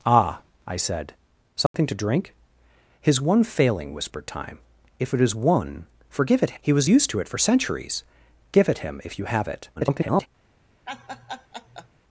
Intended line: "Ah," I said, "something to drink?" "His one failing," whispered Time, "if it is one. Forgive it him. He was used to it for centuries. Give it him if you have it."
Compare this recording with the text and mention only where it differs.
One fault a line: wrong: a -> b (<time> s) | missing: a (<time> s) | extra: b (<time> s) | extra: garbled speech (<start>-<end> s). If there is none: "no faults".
missing: him (6.6 s)
extra: garbled speech (9.8-10.3 s)